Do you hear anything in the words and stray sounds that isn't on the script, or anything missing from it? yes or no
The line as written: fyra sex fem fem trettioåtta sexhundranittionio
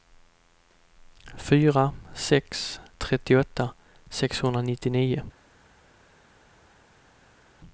yes